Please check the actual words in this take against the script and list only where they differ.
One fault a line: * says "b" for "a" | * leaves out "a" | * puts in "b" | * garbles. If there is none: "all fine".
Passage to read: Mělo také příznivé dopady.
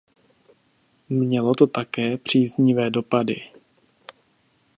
* puts in "to"